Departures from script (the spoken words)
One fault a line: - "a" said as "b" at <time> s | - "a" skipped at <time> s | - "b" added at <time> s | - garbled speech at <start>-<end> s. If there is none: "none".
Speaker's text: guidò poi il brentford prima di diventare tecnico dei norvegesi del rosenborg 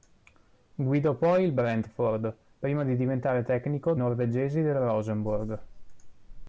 - "dei" skipped at 3.9 s